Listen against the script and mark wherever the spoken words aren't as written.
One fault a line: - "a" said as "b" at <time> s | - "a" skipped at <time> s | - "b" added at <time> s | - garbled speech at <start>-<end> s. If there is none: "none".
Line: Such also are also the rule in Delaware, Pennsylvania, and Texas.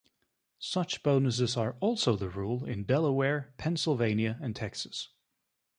- "also" said as "bonuses" at 1.0 s